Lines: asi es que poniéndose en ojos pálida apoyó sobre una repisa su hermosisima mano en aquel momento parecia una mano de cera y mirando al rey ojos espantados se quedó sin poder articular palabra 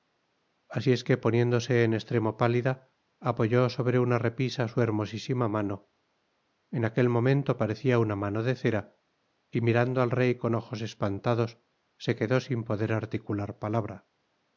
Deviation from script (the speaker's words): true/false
true